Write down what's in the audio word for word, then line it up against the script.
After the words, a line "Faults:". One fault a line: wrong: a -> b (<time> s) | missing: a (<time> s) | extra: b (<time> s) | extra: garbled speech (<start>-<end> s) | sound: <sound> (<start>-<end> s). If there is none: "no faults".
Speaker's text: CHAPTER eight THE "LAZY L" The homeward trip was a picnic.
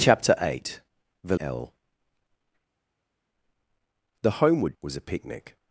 CHAPTER eight THE "L" The homeward was a picnic.
Faults:
missing: LAZY (1.4 s)
missing: trip (4.7 s)